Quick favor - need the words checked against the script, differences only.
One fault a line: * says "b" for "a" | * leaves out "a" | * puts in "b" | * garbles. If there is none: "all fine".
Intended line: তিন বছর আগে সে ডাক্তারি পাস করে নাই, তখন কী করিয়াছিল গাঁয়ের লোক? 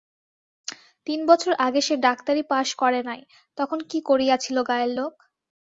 all fine